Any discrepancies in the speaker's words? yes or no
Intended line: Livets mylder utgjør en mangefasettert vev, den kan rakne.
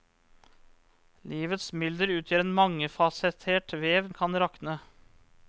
no